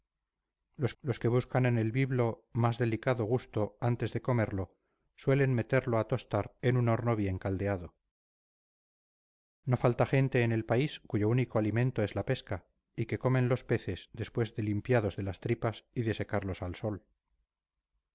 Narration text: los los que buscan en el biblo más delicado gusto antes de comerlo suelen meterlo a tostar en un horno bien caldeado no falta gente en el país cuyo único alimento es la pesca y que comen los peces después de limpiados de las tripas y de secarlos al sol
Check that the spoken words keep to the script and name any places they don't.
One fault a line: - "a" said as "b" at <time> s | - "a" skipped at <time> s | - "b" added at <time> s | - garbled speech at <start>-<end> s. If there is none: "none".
none